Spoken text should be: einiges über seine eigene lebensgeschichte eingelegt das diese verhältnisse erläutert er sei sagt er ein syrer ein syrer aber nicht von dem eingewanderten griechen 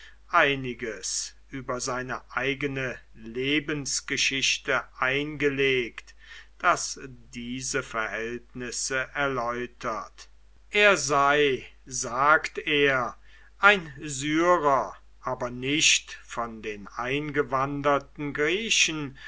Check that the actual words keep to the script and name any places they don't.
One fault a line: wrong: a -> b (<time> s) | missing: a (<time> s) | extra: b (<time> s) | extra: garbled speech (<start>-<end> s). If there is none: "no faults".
missing: ein syrer (14.9 s)
wrong: dem -> den (16.6 s)